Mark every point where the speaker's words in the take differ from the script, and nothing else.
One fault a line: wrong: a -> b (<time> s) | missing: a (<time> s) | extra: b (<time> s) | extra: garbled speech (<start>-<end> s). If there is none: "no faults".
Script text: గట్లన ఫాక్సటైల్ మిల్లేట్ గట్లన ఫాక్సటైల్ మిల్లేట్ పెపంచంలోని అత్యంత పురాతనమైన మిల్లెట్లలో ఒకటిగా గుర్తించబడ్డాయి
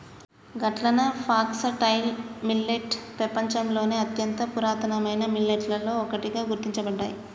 missing: గట్లన ఫాక్సటైల్ మిల్లేట్ (3.0 s)